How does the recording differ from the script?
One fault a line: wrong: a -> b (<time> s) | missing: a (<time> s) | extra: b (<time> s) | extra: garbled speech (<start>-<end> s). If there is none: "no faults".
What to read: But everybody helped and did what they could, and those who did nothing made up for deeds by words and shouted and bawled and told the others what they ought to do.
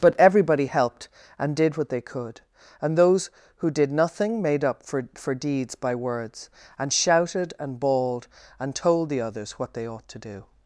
extra: for (5.1 s)